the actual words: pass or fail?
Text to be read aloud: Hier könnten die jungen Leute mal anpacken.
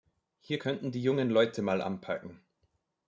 pass